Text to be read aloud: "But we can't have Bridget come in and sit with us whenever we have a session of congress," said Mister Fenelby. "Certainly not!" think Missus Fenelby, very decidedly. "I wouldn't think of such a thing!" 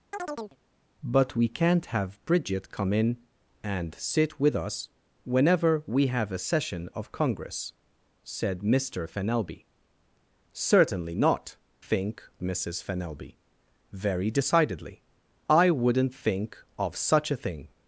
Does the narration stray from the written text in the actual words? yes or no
no